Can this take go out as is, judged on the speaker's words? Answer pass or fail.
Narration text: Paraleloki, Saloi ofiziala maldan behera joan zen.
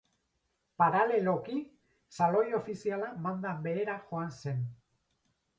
pass